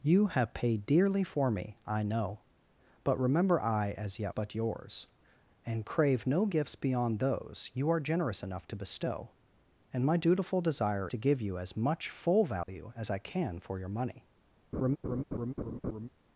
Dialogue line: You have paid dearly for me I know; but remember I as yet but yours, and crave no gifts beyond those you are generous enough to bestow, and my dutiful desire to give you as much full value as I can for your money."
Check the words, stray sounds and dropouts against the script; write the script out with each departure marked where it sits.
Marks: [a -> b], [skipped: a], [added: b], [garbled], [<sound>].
You have paid dearly for me I know; but remember I as yet but yours, and crave no gifts beyond those you are generous enough to bestow, and my dutiful desire to give you as much full value [dropout] as I can for your money." [laugh]